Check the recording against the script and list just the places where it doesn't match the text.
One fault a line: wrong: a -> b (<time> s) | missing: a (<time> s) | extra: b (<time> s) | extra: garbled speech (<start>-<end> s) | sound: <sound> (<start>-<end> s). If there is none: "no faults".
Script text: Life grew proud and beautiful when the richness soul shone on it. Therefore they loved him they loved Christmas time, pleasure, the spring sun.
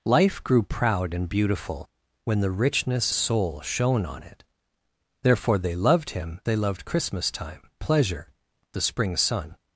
no faults